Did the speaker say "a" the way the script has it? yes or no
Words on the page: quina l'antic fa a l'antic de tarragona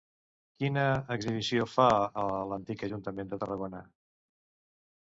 yes